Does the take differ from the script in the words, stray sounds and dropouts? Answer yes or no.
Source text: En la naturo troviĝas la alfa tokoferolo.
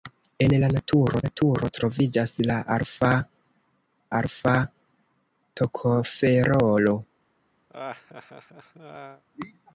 yes